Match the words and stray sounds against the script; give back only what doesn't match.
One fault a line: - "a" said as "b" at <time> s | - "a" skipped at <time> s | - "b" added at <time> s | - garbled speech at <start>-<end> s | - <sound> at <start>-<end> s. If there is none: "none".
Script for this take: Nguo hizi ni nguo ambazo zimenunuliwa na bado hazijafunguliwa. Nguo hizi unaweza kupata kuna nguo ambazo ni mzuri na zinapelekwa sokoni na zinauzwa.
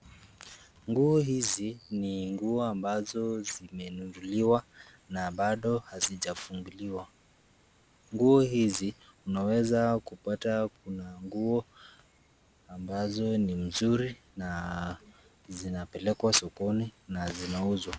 none